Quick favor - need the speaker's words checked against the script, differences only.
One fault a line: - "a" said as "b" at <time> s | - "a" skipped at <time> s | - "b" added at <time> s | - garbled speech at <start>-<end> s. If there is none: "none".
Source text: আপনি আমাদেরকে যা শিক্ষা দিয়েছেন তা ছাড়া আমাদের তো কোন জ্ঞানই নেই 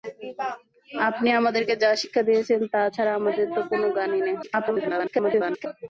- garbled speech at 4.4-5.7 s